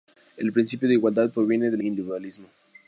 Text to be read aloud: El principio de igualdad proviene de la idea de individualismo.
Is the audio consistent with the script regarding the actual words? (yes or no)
no